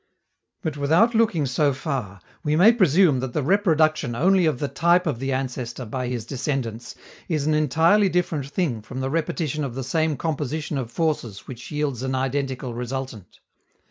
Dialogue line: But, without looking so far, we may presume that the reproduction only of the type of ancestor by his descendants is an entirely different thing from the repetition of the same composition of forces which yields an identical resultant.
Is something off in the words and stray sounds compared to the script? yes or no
yes